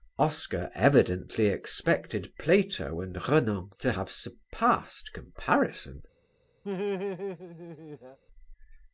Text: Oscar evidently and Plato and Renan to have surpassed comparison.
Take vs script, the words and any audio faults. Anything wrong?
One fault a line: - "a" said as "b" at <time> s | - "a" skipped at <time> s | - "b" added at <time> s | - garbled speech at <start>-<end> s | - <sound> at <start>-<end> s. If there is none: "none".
- "and" said as "expected" at 1.4 s
- laugh at 6.6-8.2 s